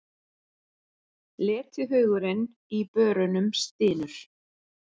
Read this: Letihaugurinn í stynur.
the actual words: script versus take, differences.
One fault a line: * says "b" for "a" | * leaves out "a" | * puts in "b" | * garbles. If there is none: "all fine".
* puts in "börunum"